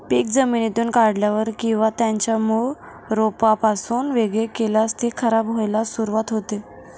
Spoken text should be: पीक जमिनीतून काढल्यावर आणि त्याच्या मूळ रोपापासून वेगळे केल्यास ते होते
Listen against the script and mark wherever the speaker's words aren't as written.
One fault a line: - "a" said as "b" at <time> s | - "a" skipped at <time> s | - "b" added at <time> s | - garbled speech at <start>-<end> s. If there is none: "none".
- "आणि" said as "किंवा" at 1.6 s
- "खराब व्हायला सुरुवात" added at 5.2 s